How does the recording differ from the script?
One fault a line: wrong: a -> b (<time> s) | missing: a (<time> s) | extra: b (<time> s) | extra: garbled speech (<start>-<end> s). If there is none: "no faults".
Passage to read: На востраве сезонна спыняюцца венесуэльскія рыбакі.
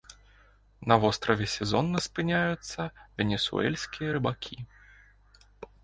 no faults